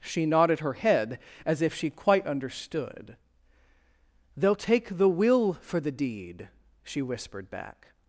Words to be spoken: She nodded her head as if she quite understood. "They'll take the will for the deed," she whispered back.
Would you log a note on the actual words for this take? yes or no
no